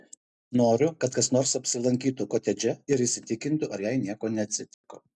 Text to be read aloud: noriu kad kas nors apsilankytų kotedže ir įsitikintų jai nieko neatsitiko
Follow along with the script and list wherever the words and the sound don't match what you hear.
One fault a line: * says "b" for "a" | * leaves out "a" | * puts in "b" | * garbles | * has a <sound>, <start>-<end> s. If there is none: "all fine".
* puts in "ar"
* has a dropout, 4.7-4.8 s